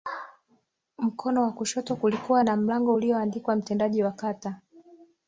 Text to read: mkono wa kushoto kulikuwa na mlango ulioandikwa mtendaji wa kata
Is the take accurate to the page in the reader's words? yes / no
yes